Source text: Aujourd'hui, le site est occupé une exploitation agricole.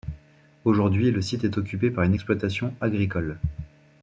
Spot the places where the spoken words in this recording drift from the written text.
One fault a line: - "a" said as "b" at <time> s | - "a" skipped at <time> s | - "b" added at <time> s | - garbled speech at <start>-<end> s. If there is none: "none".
- "par" added at 1.9 s